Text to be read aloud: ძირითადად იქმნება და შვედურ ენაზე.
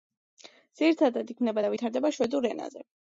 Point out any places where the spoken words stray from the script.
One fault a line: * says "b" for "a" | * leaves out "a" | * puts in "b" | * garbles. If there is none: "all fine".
* puts in "ვითარდება"